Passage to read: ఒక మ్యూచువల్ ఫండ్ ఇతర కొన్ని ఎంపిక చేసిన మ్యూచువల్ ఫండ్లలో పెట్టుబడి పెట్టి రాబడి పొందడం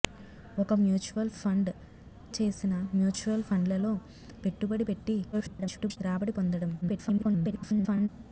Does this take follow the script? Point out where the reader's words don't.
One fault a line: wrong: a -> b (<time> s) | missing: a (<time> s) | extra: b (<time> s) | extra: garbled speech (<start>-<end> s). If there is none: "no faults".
missing: ఇతర కొన్ని ఎంపిక (1.7 s)
extra: garbled speech (5.3-6.0 s)
extra: garbled speech (6.8-8.1 s)